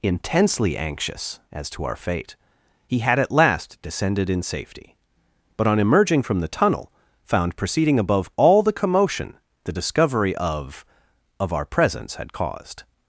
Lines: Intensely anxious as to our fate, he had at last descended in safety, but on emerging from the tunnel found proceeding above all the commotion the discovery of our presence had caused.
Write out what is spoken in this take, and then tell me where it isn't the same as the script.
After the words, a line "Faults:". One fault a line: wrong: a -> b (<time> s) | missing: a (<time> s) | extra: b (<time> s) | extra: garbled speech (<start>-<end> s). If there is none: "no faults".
Intensely anxious as to our fate, he had at last descended in safety, but on emerging from the tunnel found proceeding above all the commotion the discovery of of our presence had caused.
Faults:
extra: of (11.4 s)